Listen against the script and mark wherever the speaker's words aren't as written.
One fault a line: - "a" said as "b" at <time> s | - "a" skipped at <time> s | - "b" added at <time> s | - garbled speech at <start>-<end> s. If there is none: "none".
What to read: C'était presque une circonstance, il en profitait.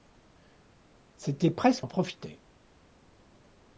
- "une circonstance il" skipped at 1.9 s